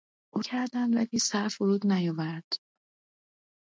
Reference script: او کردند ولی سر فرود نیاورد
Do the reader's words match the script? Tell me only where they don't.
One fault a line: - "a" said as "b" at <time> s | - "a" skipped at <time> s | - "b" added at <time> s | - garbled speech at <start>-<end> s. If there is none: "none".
none